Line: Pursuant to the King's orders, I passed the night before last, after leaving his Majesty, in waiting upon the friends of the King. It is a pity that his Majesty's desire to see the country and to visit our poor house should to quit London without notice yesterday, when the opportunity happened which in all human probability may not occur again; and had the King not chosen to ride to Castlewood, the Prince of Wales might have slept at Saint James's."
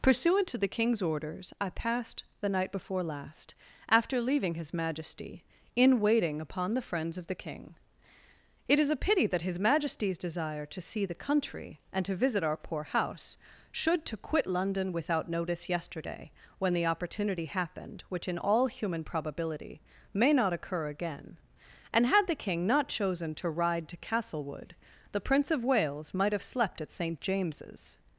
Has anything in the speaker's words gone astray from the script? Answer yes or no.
no